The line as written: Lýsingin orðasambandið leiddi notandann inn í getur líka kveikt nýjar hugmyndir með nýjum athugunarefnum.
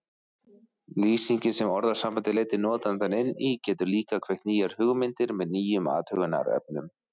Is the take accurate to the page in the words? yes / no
no